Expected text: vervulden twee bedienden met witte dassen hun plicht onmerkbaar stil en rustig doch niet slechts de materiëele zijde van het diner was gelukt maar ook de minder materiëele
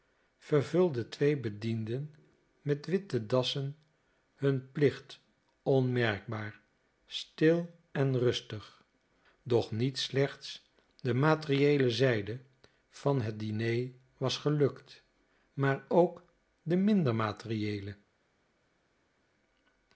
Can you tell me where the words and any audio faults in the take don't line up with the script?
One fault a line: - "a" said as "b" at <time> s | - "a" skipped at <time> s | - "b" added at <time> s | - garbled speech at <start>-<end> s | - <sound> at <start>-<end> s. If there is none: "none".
none